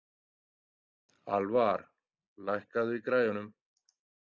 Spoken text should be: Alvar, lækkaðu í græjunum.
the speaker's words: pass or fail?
pass